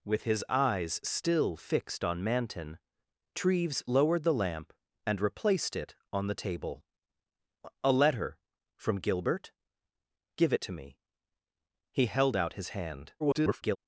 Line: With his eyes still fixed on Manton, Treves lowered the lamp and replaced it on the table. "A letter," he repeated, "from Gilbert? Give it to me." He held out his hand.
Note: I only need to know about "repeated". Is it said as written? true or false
false